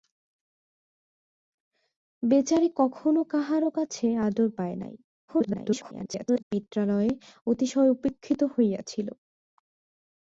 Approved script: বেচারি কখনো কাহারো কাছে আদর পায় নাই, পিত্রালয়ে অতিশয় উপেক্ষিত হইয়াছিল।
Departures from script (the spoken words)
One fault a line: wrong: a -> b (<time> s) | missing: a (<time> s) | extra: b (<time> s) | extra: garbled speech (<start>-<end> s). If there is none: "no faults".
extra: garbled speech (5.3-6.4 s)